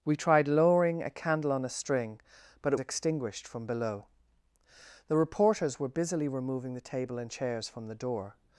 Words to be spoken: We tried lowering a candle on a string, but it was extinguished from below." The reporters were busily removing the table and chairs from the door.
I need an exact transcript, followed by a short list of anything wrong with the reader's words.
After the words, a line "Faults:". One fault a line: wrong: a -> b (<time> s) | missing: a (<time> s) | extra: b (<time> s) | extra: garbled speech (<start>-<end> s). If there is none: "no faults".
We tried lowering a candle on a string, but it extinguished from below." The reporters were busily removing the table and chairs from the door.
Faults:
missing: was (2.8 s)